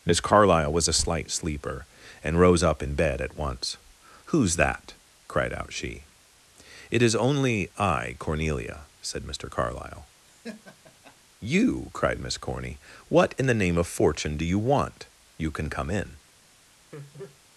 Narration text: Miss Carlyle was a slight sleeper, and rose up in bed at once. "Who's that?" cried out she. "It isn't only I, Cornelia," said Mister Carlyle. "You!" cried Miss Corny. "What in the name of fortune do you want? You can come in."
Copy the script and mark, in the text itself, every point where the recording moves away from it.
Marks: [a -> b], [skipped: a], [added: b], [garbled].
Miss Carlyle was a slight sleeper, and rose up in bed at once. "Who's that?" cried out she. "It [isn't -> is] only I, Cornelia," said Mister Carlyle. "You!" cried Miss Corny. "What in the name of fortune do you want? You can come in."